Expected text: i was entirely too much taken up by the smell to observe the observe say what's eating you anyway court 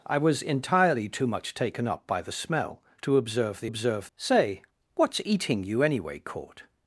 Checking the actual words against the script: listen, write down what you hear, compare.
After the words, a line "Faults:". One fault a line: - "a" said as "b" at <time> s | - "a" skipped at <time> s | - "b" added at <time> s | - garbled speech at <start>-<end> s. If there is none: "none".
i was entirely too much taken up by the smell to observe the observe say what's eating you anyway court
Faults:
none